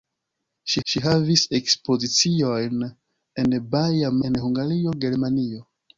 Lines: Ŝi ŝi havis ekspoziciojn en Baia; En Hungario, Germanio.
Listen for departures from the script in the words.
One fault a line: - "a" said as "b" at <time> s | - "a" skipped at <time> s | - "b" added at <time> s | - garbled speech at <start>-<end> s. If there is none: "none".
none